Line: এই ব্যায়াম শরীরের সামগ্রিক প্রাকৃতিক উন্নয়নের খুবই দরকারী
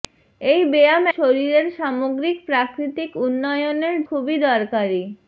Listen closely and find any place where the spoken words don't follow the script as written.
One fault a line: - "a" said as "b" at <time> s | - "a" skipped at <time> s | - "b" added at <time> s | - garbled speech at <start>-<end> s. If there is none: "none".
none